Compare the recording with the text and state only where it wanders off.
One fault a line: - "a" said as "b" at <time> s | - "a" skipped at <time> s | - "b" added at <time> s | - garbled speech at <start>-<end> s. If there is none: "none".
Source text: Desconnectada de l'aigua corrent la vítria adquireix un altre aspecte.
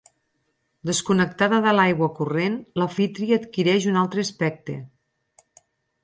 none